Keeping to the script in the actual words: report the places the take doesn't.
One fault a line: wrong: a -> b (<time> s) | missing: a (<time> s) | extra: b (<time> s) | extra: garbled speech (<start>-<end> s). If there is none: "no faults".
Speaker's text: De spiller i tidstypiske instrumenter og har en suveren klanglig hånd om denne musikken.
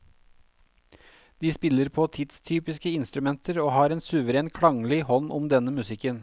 wrong: i -> på (1.9 s)